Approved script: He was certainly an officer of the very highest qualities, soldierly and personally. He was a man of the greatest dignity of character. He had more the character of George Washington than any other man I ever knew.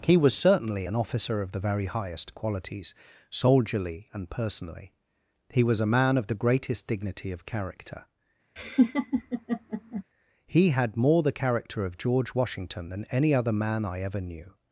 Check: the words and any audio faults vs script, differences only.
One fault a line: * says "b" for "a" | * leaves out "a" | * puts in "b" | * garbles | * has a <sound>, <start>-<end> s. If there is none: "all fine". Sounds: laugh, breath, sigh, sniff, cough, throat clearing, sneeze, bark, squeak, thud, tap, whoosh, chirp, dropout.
* has a laugh, 8.6-10.0 s